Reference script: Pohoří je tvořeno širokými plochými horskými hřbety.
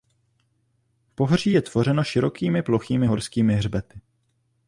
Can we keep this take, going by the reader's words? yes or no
yes